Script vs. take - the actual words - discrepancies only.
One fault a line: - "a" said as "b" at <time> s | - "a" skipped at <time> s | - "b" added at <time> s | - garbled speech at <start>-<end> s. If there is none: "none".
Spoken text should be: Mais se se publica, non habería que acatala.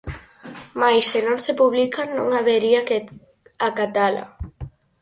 - "non" added at 1.3 s